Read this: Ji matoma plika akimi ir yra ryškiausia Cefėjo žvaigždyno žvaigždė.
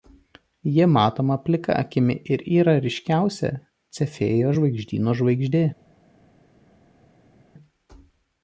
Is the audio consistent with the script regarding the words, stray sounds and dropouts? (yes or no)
yes